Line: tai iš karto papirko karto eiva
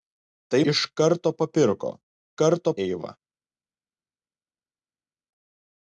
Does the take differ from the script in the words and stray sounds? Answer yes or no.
no